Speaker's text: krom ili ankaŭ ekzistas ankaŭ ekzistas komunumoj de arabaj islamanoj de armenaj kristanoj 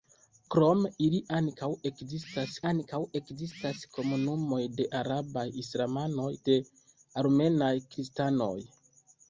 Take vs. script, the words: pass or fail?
pass